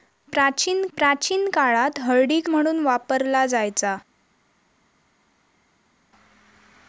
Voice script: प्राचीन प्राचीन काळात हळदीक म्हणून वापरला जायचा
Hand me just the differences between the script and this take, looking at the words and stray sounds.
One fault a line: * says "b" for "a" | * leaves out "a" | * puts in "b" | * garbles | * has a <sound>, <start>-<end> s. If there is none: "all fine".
all fine